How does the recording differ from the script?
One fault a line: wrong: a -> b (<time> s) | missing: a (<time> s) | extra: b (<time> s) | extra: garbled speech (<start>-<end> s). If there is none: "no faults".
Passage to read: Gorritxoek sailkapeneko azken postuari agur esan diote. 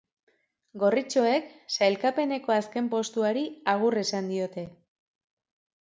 no faults